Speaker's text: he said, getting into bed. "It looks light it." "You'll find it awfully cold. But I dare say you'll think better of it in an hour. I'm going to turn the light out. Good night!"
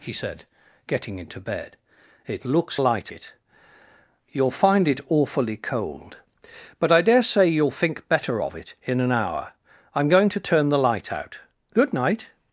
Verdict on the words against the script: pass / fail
pass